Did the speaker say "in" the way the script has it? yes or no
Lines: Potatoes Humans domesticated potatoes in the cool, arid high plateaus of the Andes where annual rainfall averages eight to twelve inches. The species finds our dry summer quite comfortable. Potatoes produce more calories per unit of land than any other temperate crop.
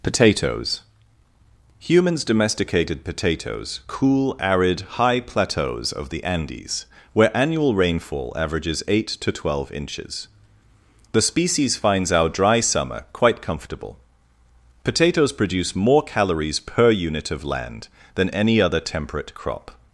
no